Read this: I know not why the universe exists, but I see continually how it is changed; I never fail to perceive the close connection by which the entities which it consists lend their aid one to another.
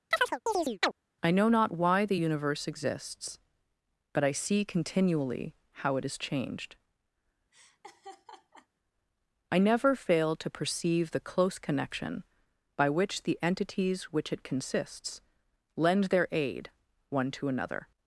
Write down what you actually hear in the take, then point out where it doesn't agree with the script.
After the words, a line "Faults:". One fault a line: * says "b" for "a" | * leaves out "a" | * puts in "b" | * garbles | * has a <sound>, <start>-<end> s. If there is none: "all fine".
I know not why the universe exists, but I see continually how it is changed; I never fail to perceive the close connection by which the entities which it consists lend their aid one to another.
Faults:
* has a chirp, 0.1-0.9 s
* has a laugh, 7.5-8.7 s